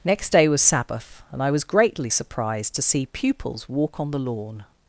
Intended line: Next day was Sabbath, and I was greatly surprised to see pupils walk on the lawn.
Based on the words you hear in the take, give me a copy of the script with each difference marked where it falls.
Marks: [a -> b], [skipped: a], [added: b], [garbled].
Next day was Sabbath, and I was greatly surprised to see pupils walk on the lawn.